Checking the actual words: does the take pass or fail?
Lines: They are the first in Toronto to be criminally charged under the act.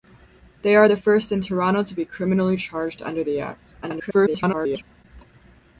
fail